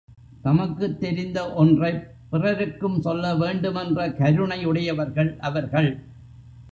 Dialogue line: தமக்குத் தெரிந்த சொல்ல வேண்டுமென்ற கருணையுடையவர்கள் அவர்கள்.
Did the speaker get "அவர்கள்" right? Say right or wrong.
right